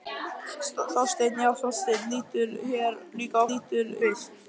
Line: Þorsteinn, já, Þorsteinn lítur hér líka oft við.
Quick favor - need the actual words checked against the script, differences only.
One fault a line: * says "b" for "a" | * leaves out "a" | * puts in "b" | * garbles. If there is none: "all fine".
* says "lítur" for "oft"